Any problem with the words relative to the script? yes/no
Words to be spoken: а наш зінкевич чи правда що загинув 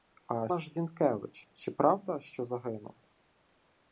no